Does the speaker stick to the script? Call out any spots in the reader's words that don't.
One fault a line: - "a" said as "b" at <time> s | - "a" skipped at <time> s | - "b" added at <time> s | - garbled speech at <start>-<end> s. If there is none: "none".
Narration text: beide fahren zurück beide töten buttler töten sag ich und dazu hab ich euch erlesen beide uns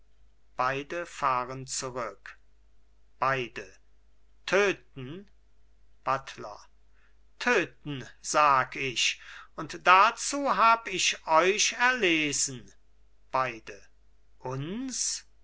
none